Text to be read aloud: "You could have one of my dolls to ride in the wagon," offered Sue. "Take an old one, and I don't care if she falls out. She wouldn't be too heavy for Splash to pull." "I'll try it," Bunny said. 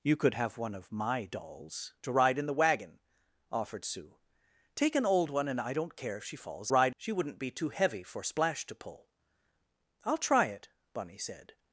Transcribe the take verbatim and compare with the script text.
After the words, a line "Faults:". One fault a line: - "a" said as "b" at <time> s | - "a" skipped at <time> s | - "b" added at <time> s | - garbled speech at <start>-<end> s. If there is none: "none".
"You could have one of my dolls to ride in the wagon," offered Sue. "Take an old one, and I don't care if she falls ride. She wouldn't be too heavy for Splash to pull." "I'll try it," Bunny said.
Faults:
- "out" said as "ride" at 6.7 s